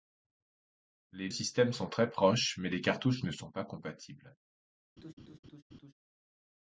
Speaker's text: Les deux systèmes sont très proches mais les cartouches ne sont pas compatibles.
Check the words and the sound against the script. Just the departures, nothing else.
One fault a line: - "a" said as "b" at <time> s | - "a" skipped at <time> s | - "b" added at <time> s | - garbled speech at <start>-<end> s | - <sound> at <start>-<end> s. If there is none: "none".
- "deux" skipped at 1.3 s
- laugh at 5.0-5.9 s